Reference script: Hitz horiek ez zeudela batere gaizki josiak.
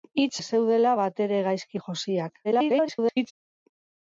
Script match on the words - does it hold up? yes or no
no